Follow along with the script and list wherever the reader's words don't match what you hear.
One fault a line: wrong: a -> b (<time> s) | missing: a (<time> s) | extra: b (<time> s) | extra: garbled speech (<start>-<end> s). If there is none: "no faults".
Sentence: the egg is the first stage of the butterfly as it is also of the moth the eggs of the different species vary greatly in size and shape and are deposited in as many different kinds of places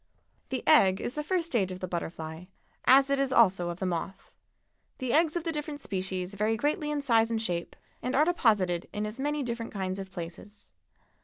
no faults